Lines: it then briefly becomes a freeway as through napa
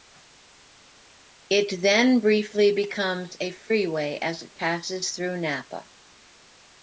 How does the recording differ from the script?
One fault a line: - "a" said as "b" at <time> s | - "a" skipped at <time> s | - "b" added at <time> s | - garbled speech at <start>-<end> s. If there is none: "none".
- "it passes" added at 4.4 s